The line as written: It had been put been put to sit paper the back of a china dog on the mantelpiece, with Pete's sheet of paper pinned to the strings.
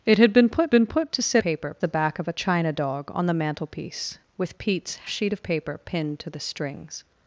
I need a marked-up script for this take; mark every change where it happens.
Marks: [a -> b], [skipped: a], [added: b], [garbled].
It had been put been put to sit paper the back of a china dog on the mantelpiece, with Pete's sheet of paper pinned to the strings.